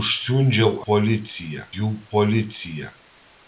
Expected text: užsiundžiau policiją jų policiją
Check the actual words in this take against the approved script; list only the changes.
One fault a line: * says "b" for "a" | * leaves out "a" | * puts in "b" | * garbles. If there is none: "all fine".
all fine